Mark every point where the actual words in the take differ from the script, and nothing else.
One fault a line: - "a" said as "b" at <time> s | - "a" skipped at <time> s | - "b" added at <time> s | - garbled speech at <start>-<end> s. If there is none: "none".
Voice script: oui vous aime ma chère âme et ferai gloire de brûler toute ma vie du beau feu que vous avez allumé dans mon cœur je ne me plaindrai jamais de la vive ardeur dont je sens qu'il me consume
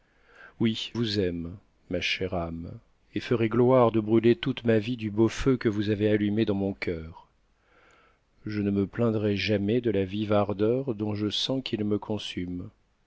none